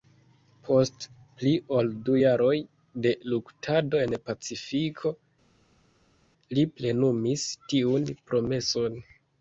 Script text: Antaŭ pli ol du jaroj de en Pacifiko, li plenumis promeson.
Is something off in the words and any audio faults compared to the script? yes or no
yes